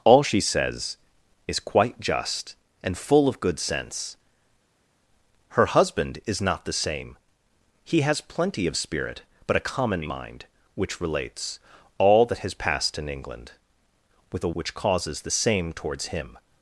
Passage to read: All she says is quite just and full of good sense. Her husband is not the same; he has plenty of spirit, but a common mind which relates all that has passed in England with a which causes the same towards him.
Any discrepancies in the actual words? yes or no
no